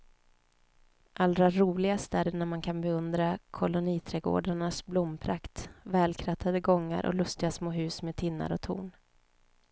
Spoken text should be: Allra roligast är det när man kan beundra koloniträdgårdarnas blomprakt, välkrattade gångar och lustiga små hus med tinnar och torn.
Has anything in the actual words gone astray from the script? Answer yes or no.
no